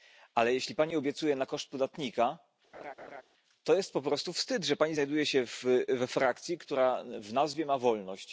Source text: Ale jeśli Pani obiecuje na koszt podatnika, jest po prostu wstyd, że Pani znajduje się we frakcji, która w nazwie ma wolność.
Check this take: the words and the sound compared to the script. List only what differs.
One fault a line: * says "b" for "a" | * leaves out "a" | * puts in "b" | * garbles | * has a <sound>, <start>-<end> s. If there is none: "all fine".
* has a laugh, 2.7-3.2 s
* puts in "to"